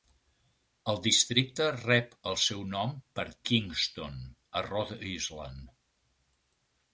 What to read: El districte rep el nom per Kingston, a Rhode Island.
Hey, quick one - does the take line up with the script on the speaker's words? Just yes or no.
no